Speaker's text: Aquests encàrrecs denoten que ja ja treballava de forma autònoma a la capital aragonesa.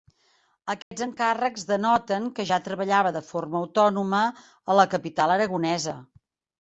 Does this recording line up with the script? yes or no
no